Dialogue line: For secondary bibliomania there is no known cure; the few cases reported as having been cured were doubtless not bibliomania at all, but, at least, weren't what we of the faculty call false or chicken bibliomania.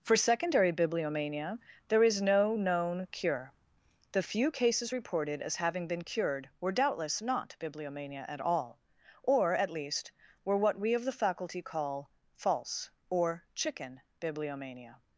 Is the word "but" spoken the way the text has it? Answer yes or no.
no